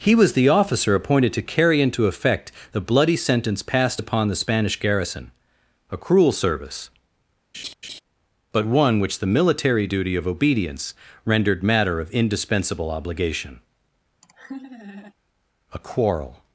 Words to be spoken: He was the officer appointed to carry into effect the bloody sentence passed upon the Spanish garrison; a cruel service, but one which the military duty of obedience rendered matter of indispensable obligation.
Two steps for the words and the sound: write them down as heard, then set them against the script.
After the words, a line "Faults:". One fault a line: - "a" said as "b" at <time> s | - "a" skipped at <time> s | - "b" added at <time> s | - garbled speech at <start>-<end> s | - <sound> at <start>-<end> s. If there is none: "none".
He was the officer appointed to carry into effect the bloody sentence passed upon the Spanish garrison; a cruel service, but one which the military duty of obedience rendered matter of indispensable obligation. A quarrel
Faults:
- laugh at 7.5-8.0 s
- laugh at 14.2-15.1 s
- "A quarrel" added at 15.7 s